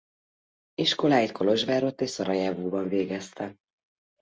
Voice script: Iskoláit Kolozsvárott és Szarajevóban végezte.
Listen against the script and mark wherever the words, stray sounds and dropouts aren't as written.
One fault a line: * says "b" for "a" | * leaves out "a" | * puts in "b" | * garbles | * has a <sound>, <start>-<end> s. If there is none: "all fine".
all fine